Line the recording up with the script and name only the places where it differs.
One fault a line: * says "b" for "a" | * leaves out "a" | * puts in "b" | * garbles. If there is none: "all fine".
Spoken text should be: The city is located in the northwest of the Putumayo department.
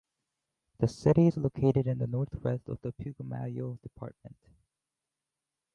all fine